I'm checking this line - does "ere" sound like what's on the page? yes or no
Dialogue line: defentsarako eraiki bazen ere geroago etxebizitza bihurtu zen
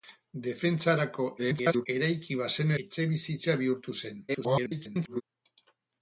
no